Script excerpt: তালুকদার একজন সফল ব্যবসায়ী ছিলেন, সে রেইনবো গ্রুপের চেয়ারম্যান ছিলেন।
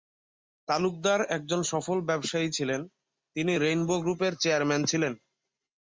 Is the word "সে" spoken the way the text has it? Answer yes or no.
no